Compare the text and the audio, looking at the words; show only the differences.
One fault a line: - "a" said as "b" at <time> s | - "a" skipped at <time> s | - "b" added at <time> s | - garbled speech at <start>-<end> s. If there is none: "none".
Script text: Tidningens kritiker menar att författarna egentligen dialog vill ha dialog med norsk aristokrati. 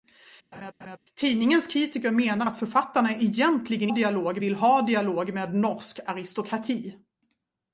none